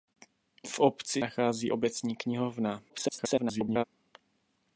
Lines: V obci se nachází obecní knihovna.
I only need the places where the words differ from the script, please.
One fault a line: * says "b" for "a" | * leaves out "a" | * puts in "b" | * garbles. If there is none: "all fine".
* leaves out "se"
* garbles